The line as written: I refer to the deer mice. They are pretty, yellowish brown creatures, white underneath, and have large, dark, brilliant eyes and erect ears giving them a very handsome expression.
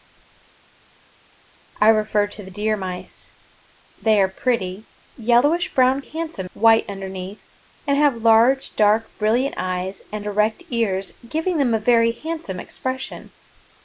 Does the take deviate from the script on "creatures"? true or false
true